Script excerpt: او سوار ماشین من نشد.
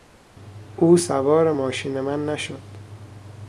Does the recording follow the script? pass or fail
pass